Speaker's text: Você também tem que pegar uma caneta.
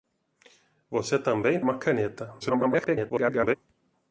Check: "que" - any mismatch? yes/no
yes